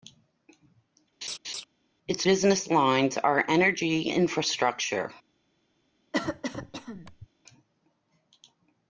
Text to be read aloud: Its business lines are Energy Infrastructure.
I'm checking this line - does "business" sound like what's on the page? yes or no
yes